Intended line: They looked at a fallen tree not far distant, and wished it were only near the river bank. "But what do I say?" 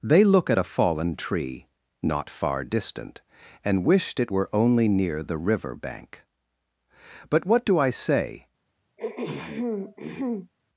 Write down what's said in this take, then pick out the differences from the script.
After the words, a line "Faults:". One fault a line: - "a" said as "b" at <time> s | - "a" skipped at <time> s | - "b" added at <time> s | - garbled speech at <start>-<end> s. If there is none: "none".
They look at a fallen tree not far distant, and wished it were only near the river bank. "But what do I say?"
Faults:
- "looked" said as "look" at 0.2 s